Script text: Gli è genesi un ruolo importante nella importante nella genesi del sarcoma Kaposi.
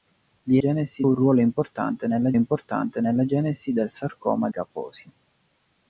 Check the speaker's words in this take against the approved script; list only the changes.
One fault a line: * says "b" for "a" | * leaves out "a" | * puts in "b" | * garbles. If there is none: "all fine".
all fine